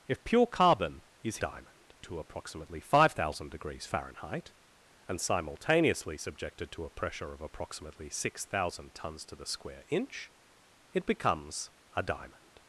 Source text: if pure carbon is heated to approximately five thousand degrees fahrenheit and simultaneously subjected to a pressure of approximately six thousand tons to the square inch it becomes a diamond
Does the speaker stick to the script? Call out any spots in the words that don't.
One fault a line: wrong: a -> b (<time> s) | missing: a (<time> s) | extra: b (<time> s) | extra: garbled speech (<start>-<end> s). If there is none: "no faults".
wrong: heated -> diamond (1.4 s)